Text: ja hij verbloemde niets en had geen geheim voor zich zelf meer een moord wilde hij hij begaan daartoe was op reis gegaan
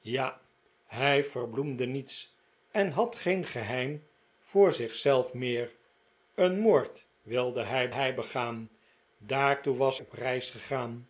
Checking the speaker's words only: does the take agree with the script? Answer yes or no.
yes